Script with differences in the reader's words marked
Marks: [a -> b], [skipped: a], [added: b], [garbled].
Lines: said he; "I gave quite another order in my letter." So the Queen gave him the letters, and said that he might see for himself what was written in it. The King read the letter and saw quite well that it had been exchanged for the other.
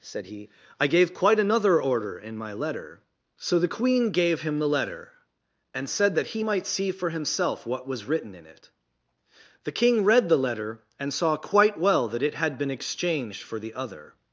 said he; "I gave quite another order in my letter." So the Queen gave him the [letters, -> letter] and said that he might see for himself what was written in it. The King read the letter and saw quite well that it had been exchanged for the other.